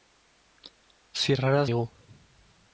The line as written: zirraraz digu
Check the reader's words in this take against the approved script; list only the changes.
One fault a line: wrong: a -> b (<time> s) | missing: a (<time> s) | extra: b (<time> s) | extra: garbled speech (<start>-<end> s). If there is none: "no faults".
no faults